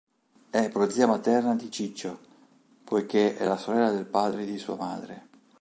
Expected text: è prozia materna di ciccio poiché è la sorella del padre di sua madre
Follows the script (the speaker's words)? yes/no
yes